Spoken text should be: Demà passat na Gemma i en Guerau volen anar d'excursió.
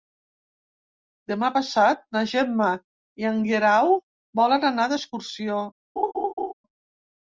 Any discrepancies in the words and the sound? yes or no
yes